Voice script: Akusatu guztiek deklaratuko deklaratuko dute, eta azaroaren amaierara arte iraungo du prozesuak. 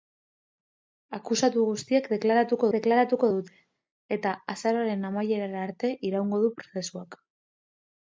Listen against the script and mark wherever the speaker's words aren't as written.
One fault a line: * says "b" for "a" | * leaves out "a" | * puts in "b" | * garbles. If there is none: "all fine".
all fine